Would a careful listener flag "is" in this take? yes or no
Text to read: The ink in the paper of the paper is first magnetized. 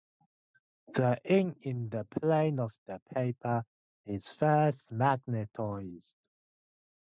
no